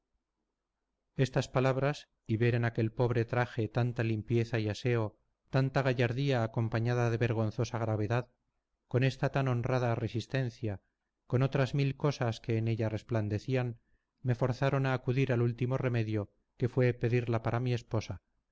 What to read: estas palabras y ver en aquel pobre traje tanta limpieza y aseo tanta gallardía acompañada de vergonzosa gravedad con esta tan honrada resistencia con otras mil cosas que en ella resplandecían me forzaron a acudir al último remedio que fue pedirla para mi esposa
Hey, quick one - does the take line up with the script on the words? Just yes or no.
yes